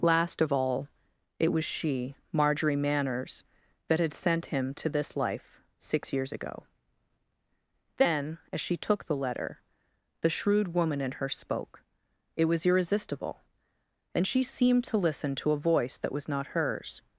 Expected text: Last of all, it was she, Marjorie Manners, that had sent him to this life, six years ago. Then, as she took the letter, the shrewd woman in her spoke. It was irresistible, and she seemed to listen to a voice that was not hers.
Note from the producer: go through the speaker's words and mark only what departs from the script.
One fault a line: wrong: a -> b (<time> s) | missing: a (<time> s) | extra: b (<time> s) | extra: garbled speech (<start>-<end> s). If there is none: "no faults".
no faults